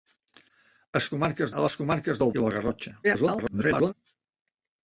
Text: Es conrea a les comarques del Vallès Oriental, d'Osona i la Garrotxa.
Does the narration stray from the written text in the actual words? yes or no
yes